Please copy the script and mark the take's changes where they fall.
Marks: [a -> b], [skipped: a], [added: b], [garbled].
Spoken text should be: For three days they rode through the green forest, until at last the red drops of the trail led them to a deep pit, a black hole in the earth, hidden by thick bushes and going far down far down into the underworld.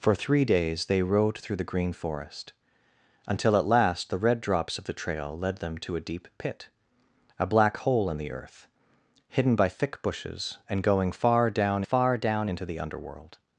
For three days they rode through the green forest, until at last the red drops of the trail led them to a deep pit, a black hole in the earth, hidden by thick bushes and going far down far down into the underworld.